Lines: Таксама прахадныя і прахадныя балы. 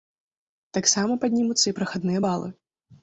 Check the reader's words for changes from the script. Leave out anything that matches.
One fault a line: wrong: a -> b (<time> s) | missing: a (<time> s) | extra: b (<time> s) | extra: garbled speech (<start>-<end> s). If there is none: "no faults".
wrong: прахадныя -> паднімуцца (1.2 s)